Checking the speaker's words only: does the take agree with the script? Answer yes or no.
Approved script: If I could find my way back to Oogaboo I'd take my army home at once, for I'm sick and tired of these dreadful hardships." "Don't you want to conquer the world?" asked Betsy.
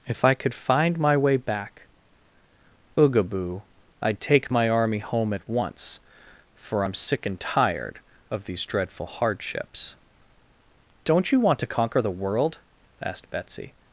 no